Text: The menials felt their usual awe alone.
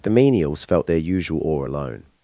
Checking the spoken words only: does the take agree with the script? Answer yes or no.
yes